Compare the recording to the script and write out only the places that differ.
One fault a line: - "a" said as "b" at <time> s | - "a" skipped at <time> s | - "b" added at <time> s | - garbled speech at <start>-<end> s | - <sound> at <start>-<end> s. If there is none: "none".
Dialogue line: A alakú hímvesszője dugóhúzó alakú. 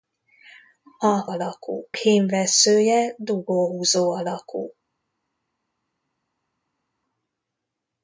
none